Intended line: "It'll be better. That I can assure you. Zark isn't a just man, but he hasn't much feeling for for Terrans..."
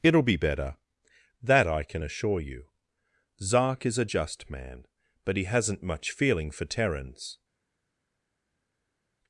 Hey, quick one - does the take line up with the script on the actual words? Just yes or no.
no